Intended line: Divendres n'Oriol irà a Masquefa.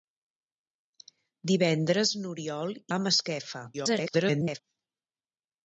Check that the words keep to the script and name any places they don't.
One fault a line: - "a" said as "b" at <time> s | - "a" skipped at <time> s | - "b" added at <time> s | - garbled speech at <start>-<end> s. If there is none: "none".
- "irà" skipped at 2.8 s
- garbled speech at 3.7-4.6 s